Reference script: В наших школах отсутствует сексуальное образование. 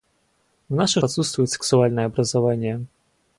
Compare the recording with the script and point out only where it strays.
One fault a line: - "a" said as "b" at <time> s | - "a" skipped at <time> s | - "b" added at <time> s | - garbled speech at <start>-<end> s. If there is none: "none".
- "школах" skipped at 1.0 s